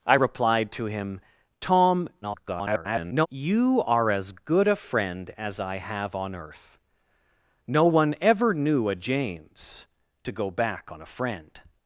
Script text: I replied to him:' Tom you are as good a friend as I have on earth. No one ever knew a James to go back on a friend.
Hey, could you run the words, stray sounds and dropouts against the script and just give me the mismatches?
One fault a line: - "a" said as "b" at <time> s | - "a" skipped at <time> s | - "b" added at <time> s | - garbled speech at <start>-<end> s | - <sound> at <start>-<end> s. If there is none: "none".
- garbled speech at 2.2-3.3 s